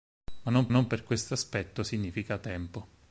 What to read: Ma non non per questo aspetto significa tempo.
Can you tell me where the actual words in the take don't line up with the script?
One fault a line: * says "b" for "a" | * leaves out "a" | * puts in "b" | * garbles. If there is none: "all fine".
all fine